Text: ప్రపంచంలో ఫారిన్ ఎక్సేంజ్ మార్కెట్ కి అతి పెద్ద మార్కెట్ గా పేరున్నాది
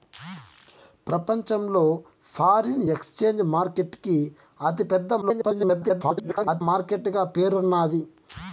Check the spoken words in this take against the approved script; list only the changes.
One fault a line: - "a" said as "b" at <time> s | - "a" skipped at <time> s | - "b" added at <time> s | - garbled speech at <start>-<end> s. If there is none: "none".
- garbled speech at 5.2-6.6 s